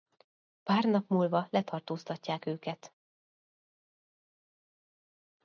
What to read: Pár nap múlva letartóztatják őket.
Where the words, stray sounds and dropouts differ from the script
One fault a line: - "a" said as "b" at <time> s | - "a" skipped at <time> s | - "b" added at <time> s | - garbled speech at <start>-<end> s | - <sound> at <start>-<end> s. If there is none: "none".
none